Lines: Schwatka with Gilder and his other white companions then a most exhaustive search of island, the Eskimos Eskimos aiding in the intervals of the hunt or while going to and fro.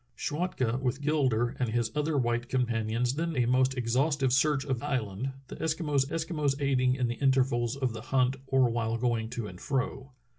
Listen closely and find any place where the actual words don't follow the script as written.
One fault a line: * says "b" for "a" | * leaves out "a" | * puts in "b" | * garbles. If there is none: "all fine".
all fine